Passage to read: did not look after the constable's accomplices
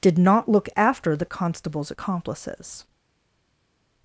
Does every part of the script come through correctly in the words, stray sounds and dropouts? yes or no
yes